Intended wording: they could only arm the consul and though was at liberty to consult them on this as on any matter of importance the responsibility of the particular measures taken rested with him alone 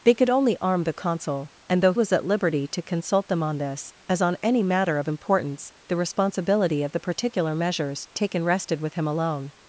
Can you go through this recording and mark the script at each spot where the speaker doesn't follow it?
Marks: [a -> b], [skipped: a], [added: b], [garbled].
they could only arm the consul and though was at liberty to consult them on this as on any matter of importance the responsibility of the particular measures taken rested with him alone